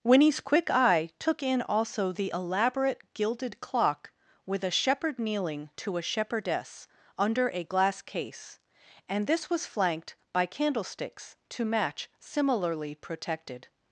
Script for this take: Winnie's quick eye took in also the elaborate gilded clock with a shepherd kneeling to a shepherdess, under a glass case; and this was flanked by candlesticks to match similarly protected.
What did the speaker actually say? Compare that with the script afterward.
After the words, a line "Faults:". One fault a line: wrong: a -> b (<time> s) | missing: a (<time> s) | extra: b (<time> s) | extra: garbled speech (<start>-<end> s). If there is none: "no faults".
Winnie's quick eye took in also the elaborate gilded clock with a shepherd kneeling to a shepherdess, under a glass case; and this was flanked by candlesticks to match similarly protected.
Faults:
no faults